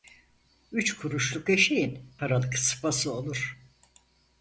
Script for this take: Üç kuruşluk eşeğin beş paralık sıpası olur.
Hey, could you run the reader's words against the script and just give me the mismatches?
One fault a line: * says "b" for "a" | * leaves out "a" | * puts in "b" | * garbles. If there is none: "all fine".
* leaves out "beş"